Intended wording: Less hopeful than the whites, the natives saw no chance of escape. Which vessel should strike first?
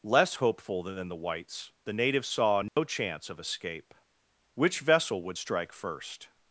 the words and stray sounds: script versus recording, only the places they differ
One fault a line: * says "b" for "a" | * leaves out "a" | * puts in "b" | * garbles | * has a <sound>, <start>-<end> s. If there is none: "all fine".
* has a dropout, 2.7-2.8 s
* says "would" for "should"